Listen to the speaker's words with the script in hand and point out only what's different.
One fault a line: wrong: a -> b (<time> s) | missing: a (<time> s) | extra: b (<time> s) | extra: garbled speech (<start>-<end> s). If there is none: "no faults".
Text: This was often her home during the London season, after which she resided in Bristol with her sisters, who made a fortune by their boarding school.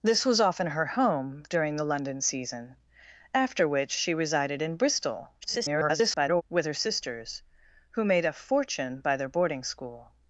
extra: garbled speech (5.4-6.4 s)